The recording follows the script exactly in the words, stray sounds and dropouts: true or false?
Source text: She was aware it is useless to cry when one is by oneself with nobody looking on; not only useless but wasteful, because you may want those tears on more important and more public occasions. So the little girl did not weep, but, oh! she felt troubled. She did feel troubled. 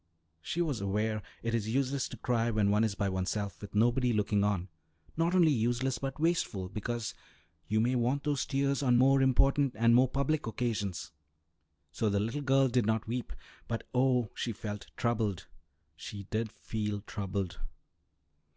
true